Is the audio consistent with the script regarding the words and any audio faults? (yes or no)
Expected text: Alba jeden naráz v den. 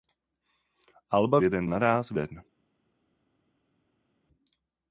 yes